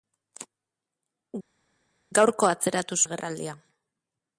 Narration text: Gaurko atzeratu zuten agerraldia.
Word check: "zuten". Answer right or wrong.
wrong